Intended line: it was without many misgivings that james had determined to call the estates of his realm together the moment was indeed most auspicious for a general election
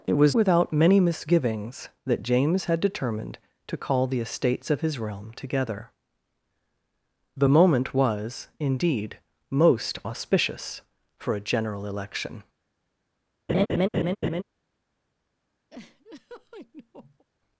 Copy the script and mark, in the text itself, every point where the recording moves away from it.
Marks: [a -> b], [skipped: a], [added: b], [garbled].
it was without many misgivings that james had determined to call the estates of his realm together the moment was indeed most auspicious for a general election